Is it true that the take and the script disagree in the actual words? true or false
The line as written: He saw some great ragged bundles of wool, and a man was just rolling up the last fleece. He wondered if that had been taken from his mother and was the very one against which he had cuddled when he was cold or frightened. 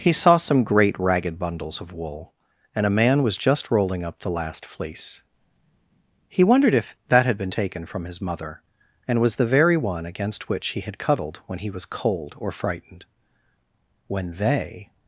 true